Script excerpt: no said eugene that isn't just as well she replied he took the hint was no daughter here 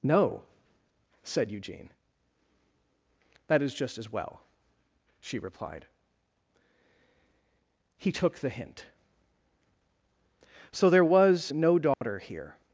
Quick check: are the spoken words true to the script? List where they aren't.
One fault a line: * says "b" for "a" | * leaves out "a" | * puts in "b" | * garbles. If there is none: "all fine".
* says "is" for "isn't"
* puts in "so there"